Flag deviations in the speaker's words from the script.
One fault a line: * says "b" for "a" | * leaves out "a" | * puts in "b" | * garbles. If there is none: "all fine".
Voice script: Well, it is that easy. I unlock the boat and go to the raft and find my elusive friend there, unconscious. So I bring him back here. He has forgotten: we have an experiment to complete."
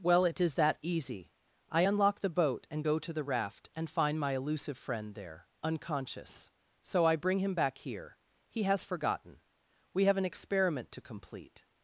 all fine